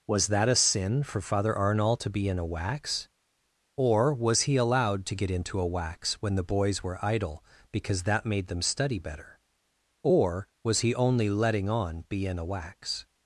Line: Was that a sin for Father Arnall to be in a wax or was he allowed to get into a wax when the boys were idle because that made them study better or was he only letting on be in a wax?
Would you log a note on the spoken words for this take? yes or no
no